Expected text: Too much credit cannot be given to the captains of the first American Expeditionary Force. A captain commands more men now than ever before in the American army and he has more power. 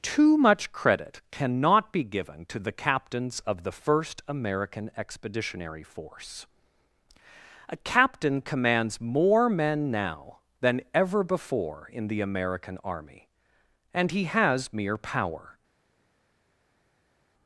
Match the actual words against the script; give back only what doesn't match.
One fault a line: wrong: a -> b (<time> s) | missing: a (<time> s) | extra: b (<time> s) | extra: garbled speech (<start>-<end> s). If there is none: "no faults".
wrong: more -> mere (14.7 s)